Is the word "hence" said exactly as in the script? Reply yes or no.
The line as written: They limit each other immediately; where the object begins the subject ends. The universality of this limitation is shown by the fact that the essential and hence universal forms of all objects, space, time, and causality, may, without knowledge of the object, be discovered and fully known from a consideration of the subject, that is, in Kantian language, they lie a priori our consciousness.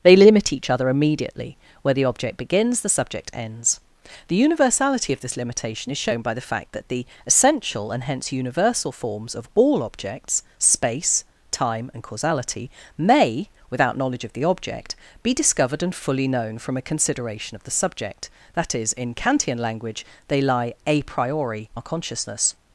yes